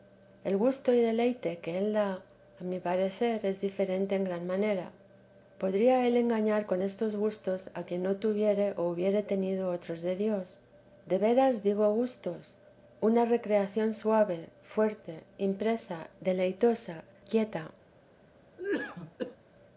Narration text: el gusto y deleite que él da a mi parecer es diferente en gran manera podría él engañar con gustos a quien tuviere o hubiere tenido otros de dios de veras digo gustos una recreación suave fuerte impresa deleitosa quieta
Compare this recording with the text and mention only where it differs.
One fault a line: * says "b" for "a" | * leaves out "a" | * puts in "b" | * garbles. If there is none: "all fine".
* puts in "estos"
* puts in "no"